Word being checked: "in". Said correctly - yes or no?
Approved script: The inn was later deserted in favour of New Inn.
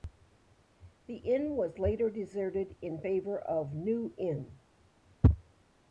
yes